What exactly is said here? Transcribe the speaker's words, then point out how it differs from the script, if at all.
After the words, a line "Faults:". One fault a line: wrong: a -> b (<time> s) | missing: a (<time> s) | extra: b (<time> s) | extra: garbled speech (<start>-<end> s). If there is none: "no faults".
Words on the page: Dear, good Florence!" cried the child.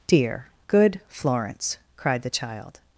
Dear, good Florence!" cried the child.
Faults:
no faults